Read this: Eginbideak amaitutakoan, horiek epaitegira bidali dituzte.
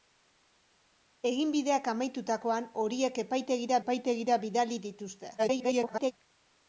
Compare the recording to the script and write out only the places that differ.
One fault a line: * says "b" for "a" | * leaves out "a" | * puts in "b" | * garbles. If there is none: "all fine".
* puts in "epaitegira"
* garbles